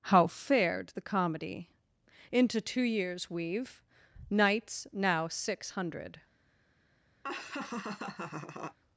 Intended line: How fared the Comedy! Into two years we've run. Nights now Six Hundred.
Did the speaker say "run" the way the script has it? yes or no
no